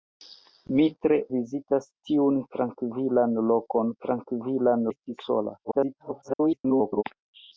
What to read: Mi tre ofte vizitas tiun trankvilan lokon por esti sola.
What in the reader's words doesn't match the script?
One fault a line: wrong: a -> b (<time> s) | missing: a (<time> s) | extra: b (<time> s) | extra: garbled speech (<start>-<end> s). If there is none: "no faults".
missing: ofte (1.2 s)
wrong: por -> trankvilan (4.0 s)
extra: garbled speech (5.6-7.0 s)